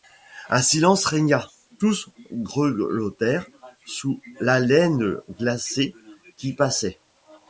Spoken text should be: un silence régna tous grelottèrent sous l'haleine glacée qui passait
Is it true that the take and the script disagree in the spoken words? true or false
false